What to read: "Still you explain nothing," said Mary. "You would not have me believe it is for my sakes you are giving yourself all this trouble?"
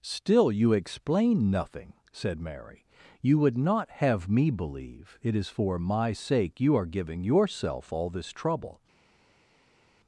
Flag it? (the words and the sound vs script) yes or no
yes